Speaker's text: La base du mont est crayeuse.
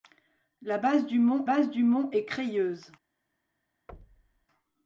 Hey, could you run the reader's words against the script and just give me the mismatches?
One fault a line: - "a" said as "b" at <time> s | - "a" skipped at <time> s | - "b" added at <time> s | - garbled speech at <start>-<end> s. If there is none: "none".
- "base du mont" added at 1.4 s